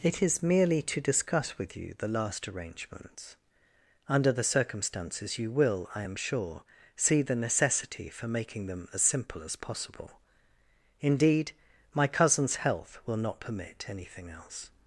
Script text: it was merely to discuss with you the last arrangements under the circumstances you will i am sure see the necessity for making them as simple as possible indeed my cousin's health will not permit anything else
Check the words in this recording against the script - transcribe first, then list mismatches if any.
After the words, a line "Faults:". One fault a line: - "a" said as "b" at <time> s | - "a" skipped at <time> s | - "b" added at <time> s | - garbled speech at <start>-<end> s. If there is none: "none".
it is merely to discuss with you the last arrangements under the circumstances you will i am sure see the necessity for making them as simple as possible indeed my cousin's health will not permit anything else
Faults:
- "was" said as "is" at 0.2 s